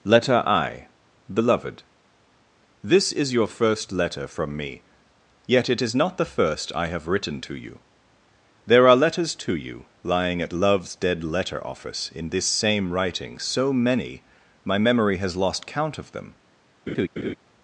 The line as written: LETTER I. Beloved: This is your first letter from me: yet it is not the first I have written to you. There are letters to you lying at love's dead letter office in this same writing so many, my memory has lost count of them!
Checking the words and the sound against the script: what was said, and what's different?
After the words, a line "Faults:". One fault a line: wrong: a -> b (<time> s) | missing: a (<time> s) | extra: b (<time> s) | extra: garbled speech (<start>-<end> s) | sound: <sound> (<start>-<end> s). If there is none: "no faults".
LETTER I. Beloved: This is your first letter from me: yet it is not the first I have written to you. There are letters to you lying at love's dead letter office in this same writing so many, my memory has lost count of them!
Faults:
sound: laugh (16.9-17.4 s)